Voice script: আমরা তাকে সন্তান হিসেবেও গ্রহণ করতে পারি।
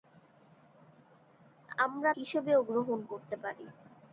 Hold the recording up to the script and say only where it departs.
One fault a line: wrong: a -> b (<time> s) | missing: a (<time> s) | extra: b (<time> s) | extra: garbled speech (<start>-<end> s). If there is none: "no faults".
missing: তাকে সন্তান (2.1 s)